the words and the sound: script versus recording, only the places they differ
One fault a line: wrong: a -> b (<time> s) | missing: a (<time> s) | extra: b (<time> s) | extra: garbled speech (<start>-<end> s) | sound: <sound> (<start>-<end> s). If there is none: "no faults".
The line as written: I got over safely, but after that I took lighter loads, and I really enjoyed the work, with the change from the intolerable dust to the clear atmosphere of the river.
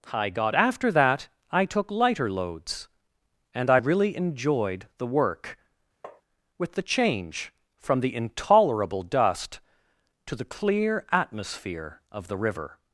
missing: over safely but (0.6 s)
sound: tap (6.0-6.2 s)